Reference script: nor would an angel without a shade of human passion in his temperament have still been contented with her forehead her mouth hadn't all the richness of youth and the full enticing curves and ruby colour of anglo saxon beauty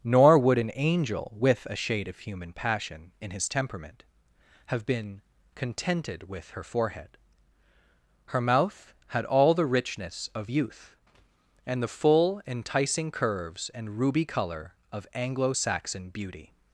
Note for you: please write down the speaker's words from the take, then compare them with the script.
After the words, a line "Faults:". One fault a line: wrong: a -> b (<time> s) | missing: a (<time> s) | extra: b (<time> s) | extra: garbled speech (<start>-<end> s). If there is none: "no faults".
nor would an angel with a shade of human passion in his temperament have been contented with her forehead her mouth had all the richness of youth and the full enticing curves and ruby colour of anglo saxon beauty
Faults:
wrong: without -> with (1.4 s)
missing: still (4.9 s)
wrong: hadn't -> had (9.1 s)